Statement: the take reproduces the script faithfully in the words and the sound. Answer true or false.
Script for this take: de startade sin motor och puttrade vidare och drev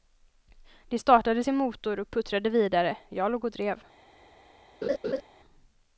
false